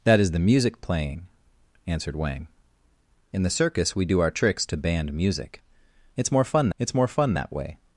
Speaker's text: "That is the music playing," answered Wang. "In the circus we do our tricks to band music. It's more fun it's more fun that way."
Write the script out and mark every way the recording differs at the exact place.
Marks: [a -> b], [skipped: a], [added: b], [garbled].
"That is the music playing," answered Wang. "In the circus we do our tricks to band music. It's more fun it's more fun that way."